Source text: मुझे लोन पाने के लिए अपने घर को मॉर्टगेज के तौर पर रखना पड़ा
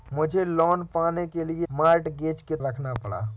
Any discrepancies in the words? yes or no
yes